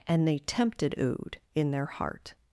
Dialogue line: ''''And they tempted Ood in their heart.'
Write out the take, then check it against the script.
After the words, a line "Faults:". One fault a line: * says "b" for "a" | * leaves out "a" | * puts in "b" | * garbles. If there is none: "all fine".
''''And they tempted Ood in their heart.'
Faults:
all fine